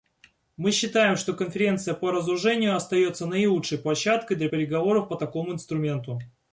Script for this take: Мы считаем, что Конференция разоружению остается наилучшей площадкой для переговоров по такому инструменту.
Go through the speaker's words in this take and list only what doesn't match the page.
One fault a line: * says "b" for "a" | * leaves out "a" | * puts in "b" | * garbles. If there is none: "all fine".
* puts in "по"